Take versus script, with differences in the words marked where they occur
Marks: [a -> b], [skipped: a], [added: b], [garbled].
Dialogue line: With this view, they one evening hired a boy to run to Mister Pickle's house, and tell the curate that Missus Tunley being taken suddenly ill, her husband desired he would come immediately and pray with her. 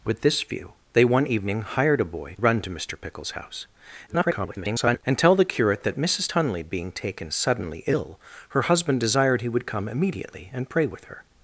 With this view, they one evening hired a boy [skipped: to] run to Mister Pickle's house, [garbled] and tell the curate that Missus Tunley being taken suddenly ill, her husband desired he would come immediately and pray with her.